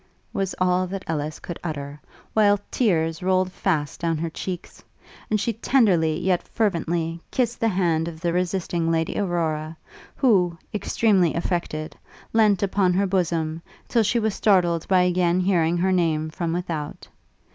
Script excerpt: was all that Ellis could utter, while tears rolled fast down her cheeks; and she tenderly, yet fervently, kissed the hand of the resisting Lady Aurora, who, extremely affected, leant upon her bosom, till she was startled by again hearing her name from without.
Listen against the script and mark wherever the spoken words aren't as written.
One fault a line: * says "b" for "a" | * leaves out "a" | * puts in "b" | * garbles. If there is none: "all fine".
all fine